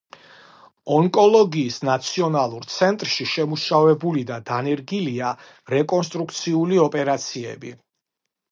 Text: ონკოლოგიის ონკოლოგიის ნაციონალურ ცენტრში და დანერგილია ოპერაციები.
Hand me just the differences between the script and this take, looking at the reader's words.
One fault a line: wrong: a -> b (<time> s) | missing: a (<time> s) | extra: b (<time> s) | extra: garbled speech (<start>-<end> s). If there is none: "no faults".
missing: ონკოლოგიის (1.8 s)
extra: შემუშავებული (3.3 s)
extra: რეკონსტრუქციული (5.8 s)